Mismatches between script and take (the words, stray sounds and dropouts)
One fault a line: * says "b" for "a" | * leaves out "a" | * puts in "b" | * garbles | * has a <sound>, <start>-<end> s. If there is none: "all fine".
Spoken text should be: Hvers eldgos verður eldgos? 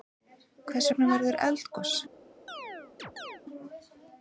* says "vegna" for "eldgos"
* has a chirp, 2.5-3.4 s